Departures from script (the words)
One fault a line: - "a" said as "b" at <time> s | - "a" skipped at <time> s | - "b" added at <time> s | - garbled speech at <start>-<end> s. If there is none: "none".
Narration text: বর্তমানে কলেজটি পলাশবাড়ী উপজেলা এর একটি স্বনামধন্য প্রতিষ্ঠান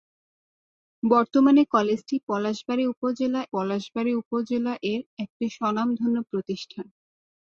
- "পলাশবাড়ী উপজেলা" added at 3.5 s